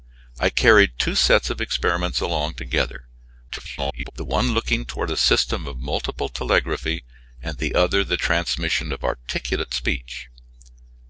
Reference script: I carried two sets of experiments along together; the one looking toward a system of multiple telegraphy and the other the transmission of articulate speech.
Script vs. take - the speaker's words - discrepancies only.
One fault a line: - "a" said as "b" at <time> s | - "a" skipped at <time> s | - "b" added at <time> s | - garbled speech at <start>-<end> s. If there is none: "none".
- garbled speech at 3.5-4.1 s